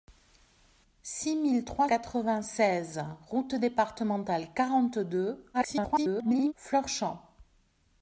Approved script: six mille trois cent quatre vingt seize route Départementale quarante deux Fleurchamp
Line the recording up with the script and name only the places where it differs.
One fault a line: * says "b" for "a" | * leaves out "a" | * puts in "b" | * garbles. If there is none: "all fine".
* leaves out "cent"
* garbles